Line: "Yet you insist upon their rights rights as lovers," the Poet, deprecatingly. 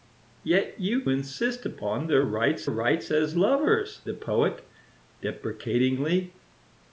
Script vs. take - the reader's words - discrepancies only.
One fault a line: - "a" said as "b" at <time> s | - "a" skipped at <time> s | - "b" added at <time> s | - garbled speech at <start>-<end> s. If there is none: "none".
none